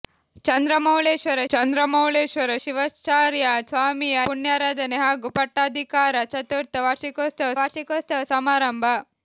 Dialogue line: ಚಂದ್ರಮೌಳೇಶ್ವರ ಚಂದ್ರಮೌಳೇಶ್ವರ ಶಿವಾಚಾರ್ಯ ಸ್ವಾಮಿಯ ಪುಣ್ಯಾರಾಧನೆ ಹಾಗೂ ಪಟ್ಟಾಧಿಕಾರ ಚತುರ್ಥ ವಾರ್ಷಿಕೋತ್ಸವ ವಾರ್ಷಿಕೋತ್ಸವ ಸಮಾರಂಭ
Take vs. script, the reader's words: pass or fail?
pass